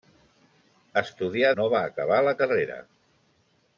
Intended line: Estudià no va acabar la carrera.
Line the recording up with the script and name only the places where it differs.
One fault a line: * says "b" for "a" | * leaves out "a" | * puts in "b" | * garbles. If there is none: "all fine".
all fine